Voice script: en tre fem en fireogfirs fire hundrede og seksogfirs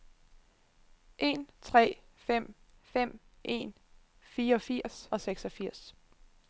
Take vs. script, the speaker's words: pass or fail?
fail